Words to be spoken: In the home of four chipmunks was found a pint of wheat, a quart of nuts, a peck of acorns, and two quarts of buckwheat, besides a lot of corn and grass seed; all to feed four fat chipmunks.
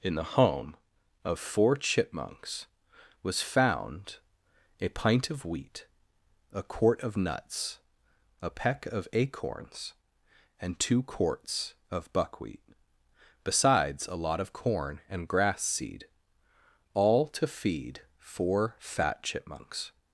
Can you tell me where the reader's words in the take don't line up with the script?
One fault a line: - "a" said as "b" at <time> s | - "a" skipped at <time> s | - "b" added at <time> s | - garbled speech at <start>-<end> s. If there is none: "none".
none